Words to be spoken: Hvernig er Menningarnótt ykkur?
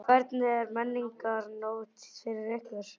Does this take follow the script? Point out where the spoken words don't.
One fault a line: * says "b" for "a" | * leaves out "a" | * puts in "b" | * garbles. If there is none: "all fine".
* puts in "fyrir"